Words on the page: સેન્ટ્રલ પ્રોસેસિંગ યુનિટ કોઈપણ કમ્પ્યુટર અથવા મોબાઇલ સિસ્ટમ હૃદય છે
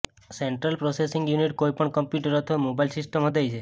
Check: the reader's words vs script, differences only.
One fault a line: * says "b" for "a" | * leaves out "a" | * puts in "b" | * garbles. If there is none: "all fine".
all fine